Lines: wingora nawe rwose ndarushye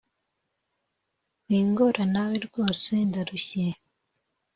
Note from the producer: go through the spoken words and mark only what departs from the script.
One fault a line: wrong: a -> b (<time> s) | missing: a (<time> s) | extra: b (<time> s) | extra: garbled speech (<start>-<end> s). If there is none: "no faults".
no faults